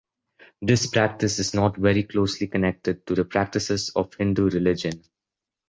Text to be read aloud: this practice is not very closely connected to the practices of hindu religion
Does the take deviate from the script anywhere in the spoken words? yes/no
no